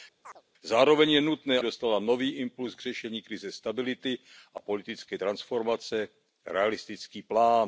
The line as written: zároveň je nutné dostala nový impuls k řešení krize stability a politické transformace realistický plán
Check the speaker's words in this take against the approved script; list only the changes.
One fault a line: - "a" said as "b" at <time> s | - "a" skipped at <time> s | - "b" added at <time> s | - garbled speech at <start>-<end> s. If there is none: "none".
none